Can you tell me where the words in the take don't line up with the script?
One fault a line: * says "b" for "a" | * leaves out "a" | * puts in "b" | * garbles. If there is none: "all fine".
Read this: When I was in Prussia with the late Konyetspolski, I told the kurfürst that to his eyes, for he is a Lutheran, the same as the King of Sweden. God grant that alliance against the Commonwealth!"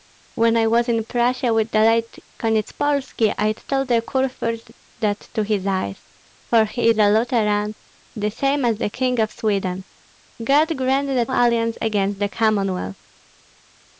all fine